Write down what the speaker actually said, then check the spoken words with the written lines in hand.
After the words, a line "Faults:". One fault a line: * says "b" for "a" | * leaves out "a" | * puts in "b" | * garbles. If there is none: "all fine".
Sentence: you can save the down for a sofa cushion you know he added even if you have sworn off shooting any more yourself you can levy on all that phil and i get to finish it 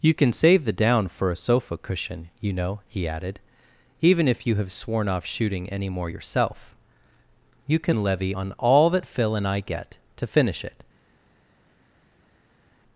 you can save the down for a sofa cushion you know he added even if you have sworn off shooting any more yourself you can levy on all that phil and i get to finish it
Faults:
all fine